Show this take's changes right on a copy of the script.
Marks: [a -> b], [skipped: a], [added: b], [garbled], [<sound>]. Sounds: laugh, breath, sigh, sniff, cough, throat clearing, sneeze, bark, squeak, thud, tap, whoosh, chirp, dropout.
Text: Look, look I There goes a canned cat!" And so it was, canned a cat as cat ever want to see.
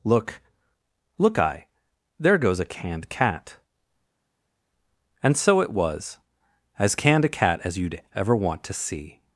Look, look I There goes a canned cat!" And so it was, [added: as] canned a cat as [cat -> you'd] ever want to see.